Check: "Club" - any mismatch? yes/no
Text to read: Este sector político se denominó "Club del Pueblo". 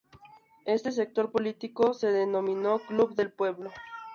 no